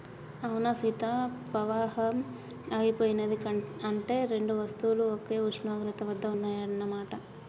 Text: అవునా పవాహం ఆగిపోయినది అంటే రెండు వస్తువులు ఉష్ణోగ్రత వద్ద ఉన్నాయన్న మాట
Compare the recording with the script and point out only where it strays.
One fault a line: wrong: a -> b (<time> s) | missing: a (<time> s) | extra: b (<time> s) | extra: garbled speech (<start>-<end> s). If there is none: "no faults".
extra: సీత (0.7 s)
extra: ఒకే (5.1 s)